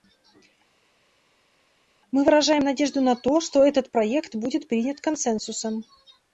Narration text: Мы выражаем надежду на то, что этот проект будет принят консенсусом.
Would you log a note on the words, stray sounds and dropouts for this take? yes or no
no